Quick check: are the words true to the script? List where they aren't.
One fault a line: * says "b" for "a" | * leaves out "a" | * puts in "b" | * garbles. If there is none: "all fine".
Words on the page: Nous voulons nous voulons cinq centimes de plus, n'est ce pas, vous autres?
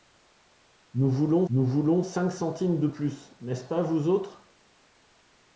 all fine